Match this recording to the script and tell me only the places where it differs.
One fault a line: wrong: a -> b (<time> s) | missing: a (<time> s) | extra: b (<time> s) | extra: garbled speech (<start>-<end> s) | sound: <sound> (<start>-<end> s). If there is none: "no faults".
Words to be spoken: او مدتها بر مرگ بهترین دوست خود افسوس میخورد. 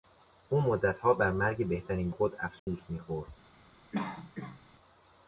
missing: دوست (2.1 s)
sound: dropout (2.6-2.7 s)
sound: cough (3.9-4.6 s)